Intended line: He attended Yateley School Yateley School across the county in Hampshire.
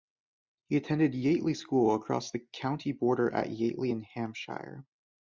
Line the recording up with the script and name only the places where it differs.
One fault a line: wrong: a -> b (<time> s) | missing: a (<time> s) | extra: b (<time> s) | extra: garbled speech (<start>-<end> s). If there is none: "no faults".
missing: Yateley School (1.9 s)
extra: border at Yateley (2.9 s)